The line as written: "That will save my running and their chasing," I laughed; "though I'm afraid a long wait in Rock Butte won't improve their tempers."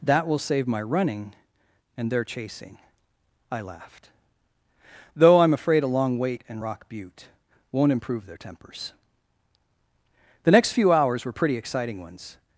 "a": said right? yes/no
yes